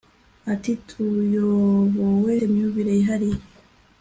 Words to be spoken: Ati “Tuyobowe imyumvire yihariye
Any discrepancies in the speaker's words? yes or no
no